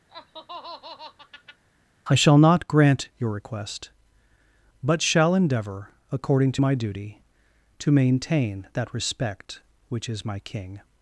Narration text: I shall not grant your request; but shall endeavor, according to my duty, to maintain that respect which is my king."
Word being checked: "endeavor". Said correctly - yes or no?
yes